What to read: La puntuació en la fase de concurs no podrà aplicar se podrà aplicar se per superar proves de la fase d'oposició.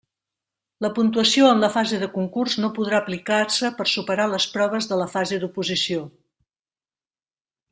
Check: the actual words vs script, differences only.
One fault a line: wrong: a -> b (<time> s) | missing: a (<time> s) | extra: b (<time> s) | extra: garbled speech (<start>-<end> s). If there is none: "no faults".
missing: podrà aplicar se (3.7 s)
extra: les (4.3 s)